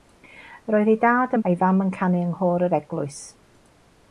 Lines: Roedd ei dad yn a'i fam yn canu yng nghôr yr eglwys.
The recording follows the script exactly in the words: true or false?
true